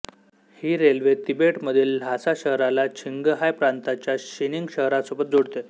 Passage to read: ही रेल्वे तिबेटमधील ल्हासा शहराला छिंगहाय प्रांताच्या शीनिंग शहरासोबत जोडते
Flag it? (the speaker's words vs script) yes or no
no